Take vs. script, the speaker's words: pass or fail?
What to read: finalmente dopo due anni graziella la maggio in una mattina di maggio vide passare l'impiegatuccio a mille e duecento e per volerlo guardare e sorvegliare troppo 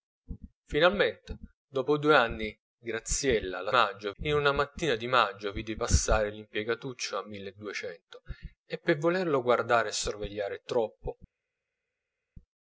pass